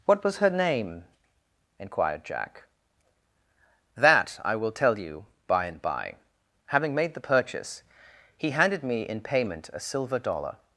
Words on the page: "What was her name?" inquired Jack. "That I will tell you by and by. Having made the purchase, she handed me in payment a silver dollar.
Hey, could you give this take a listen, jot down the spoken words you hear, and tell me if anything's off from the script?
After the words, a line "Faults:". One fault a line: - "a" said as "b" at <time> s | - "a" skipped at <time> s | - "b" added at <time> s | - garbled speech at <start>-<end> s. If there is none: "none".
"What was her name?" inquired Jack. "That I will tell you by and by. Having made the purchase, he handed me in payment a silver dollar.
Faults:
- "she" said as "he" at 8.4 s